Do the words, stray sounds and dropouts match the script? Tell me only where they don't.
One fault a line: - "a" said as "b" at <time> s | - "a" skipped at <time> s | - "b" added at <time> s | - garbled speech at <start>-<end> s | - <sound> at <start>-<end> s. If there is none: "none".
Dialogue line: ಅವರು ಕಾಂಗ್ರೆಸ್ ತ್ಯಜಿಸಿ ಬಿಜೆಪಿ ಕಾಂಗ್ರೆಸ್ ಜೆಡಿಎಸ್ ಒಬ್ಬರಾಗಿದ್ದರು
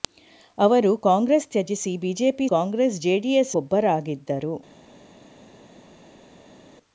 none